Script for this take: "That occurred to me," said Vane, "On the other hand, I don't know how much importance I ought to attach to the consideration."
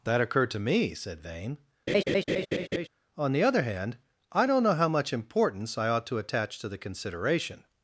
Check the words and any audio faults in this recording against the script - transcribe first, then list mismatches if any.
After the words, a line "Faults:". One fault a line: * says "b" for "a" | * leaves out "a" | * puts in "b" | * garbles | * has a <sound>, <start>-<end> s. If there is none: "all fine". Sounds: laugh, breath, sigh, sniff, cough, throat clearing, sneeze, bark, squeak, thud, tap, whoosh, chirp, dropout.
"That occurred to me," said Vane, "On the other hand, I don't know how much importance I ought to attach to the consideration."
Faults:
* has a laugh, 1.9-2.9 s